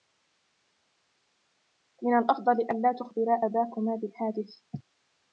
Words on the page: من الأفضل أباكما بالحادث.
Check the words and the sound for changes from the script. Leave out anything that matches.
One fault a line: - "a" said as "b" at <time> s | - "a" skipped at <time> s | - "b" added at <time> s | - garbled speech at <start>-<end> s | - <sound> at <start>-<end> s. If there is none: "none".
- "ألا تخبرا" added at 2.5 s